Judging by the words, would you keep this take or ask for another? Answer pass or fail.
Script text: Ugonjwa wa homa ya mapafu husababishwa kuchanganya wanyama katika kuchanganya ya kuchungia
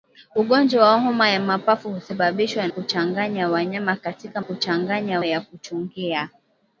pass